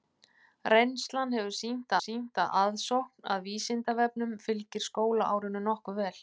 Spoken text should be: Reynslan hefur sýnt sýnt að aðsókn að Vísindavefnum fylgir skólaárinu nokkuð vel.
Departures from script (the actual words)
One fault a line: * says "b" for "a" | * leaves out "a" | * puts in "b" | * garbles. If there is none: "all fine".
all fine